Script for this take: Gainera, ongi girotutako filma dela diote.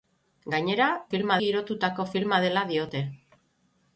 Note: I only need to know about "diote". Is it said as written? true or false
true